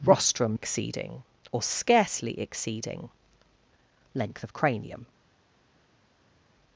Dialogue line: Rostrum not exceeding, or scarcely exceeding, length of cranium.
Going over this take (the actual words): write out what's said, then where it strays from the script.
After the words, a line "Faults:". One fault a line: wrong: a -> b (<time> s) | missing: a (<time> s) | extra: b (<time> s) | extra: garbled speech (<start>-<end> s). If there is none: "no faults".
Rostrum exceeding, or scarcely exceeding, length of cranium.
Faults:
missing: not (0.6 s)